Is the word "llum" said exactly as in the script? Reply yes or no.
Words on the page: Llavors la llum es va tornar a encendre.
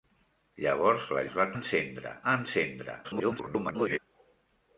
no